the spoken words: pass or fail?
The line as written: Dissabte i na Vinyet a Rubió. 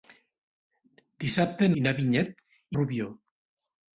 pass